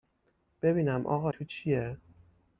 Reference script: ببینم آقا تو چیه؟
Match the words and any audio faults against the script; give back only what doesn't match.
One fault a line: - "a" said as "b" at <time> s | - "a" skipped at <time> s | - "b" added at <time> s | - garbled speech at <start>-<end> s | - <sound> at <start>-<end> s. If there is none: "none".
none